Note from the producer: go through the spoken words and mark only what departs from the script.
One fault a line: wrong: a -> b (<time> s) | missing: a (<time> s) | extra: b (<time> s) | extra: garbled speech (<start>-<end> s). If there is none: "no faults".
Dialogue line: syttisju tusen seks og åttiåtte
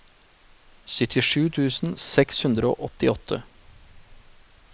extra: hundre (2.5 s)